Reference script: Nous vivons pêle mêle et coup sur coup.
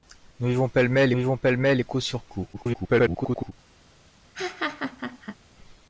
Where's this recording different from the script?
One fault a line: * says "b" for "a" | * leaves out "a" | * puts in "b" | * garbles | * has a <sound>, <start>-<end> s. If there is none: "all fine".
* puts in "vivons pêle mêle"
* garbles
* has a laugh, 4.3-5.4 s